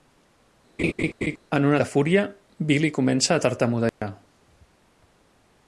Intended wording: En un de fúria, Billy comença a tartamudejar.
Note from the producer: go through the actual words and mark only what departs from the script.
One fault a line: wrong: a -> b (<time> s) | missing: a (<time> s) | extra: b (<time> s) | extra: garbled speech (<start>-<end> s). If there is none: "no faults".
no faults